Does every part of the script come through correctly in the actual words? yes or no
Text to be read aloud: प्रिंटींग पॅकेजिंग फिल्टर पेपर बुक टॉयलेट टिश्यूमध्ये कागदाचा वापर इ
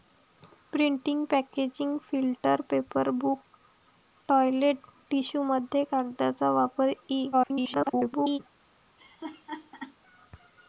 no